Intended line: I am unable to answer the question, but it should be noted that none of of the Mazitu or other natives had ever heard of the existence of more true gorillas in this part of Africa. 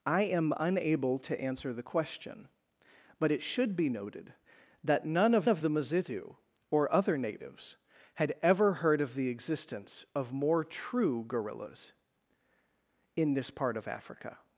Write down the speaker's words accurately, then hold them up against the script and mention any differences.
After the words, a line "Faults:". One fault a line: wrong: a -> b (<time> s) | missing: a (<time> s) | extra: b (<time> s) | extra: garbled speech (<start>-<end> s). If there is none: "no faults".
I am unable to answer the question, but it should be noted that none of of the Mazitu or other natives had ever heard of the existence of more true gorillas in this part of Africa.
Faults:
no faults